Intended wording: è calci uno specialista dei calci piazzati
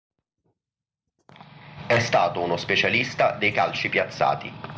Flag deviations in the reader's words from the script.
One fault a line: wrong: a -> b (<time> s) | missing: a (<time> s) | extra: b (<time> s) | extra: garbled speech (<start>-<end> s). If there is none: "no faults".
wrong: calci -> stato (2.0 s)